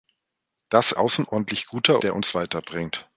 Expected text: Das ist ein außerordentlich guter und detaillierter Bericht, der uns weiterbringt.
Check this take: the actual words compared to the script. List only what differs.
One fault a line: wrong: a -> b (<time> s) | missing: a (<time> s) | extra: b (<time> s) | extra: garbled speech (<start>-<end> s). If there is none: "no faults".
missing: ist ein (0.9 s)
missing: und detaillierter Bericht (2.0 s)